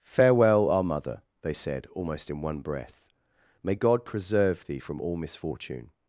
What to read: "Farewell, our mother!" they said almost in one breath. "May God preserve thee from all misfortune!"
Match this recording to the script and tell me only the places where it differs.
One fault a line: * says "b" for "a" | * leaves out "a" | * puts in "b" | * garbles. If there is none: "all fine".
all fine